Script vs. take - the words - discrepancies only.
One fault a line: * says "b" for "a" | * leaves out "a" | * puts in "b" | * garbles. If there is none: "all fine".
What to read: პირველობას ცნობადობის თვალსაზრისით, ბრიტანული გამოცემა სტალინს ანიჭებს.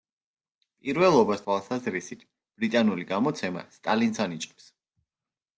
* leaves out "ცნობადობის"